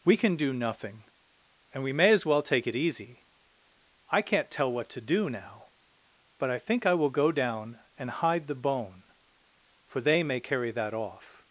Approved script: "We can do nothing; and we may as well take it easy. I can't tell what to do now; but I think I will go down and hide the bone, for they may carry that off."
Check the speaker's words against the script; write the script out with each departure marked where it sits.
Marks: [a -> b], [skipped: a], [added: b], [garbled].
"We can do nothing; and we may as well take it easy. I can't tell what to do now; but I think I will go down and hide the bone, for they may carry that off."